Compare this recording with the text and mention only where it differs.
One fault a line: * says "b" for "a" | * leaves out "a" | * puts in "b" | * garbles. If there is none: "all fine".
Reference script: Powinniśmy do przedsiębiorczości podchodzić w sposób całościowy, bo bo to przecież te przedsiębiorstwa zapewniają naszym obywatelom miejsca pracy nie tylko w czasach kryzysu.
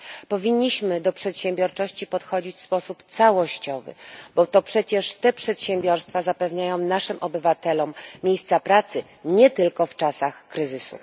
* leaves out "bo"